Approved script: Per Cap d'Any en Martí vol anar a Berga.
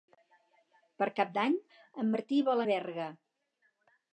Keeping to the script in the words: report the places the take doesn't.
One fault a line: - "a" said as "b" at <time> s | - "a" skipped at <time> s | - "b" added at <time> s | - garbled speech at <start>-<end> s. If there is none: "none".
- "anar" skipped at 2.7 s